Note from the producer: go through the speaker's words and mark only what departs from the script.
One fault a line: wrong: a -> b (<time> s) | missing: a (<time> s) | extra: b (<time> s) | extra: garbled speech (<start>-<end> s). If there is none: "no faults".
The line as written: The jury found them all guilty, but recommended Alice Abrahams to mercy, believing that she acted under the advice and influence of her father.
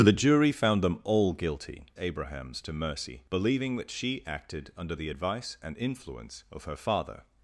missing: but recommended Alice (1.9 s)